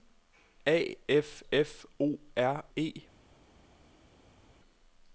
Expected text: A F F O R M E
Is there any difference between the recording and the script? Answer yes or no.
yes